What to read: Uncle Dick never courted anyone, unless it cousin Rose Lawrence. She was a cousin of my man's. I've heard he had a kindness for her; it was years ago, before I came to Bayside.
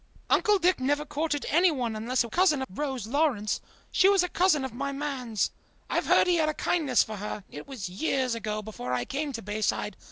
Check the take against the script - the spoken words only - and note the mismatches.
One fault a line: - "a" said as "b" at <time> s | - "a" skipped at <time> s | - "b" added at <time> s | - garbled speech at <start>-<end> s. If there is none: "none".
none